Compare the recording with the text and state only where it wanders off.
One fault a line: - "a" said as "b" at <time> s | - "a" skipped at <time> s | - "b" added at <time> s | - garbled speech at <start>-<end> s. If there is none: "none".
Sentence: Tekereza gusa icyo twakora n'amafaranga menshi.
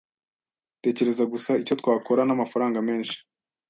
none